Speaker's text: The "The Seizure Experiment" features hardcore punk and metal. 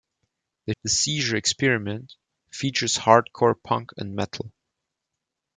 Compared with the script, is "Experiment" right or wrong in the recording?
right